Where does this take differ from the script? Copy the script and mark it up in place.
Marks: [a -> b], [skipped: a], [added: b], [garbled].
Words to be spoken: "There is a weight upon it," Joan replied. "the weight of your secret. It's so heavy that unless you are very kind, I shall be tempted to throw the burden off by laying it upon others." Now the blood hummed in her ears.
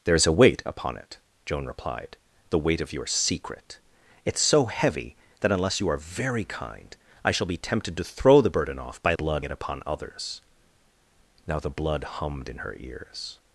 "There is a weight upon it," Joan replied. "the weight of your secret. It's so heavy that unless you are very kind, I shall be tempted to throw the burden off by [laying -> blood] it upon others." Now the blood hummed in her ears.